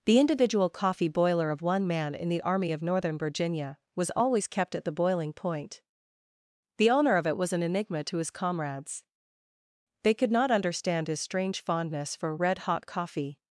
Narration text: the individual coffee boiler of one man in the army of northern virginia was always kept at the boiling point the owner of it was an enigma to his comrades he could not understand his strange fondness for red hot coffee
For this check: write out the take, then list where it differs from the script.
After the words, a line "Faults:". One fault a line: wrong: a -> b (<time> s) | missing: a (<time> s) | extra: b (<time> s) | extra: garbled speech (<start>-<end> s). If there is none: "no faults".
the individual coffee boiler of one man in the army of northern virginia was always kept at the boiling point the owner of it was an enigma to his comrades they could not understand his strange fondness for red hot coffee
Faults:
wrong: he -> they (10.0 s)